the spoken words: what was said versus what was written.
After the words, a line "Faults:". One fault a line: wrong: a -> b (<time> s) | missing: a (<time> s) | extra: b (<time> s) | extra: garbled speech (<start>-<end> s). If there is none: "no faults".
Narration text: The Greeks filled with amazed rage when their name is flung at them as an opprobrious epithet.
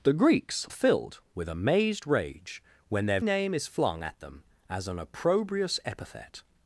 The Greeks filled with amazed rage when their name is flung at them as an opprobrious epithet.
Faults:
no faults